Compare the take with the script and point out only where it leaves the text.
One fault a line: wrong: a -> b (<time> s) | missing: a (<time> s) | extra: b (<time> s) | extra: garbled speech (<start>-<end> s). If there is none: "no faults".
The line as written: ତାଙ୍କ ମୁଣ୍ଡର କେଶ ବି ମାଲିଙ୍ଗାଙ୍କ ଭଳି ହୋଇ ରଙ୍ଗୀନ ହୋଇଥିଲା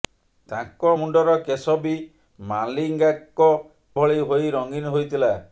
no faults